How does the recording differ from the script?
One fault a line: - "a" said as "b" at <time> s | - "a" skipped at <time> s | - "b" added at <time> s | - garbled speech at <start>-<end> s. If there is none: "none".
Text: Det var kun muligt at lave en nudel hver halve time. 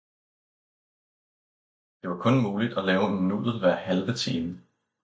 none